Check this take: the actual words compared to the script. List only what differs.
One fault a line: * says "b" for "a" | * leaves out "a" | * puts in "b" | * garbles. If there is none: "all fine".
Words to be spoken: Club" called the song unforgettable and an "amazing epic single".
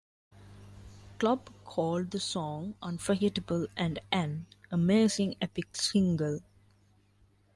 all fine